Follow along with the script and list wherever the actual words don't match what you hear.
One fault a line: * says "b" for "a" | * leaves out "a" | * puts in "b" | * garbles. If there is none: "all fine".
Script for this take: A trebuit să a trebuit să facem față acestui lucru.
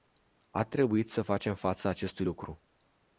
* leaves out "a trebuit să"